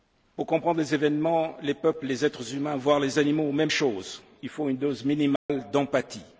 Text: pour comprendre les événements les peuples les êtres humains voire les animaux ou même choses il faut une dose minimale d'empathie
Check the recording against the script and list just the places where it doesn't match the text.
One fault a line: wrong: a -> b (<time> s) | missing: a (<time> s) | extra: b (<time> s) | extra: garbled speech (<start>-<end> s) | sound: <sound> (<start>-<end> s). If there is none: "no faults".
sound: dropout (5.4-5.5 s)